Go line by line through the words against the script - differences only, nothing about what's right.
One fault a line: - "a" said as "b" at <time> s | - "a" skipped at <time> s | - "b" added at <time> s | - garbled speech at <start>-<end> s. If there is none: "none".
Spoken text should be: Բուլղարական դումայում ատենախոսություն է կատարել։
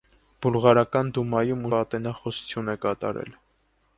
none